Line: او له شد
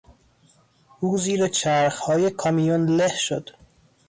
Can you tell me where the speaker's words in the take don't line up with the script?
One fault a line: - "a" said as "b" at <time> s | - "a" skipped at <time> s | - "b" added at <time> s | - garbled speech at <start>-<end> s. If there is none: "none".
- "زیر چرخهای کامیون" added at 1.2 s